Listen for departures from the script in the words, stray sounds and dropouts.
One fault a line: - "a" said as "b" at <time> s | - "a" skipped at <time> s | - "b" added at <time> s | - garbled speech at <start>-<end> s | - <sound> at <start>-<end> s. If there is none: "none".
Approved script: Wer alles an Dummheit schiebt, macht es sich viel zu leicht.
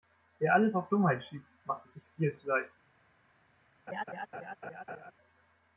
- "an" said as "auf" at 0.7 s
- laugh at 3.9-5.1 s